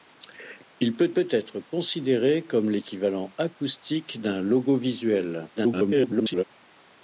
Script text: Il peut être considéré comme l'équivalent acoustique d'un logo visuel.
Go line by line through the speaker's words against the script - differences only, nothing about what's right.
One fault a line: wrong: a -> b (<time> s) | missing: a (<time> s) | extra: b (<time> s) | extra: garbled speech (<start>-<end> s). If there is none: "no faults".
extra: peut (1.1 s)
extra: garbled speech (5.5-6.4 s)